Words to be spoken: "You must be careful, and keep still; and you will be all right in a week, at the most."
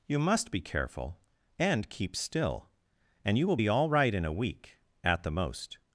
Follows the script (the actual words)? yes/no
yes